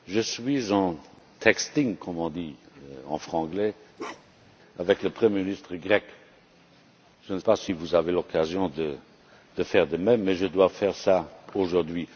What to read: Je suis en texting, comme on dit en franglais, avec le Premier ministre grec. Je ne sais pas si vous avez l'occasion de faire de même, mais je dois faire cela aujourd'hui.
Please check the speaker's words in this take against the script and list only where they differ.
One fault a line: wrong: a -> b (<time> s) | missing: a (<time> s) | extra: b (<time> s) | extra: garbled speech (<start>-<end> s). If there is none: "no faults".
missing: sais (7.4 s)